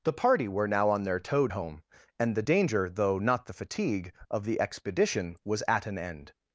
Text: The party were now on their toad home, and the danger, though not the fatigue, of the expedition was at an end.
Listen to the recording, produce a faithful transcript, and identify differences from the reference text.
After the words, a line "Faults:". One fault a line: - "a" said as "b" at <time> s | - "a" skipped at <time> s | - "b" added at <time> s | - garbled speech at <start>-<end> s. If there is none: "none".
The party were now on their toad home, and the danger, though not the fatigue, of the expedition was at an end.
Faults:
none